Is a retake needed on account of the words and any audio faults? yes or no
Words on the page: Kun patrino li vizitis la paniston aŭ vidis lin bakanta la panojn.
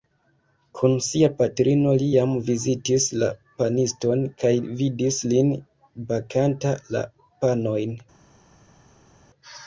yes